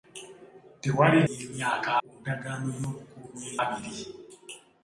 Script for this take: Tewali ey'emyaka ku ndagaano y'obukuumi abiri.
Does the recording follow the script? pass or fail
pass